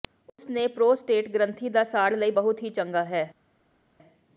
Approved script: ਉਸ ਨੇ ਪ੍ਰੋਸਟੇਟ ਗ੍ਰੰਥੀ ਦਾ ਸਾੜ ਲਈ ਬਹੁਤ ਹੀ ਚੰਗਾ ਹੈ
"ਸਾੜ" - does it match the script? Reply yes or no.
yes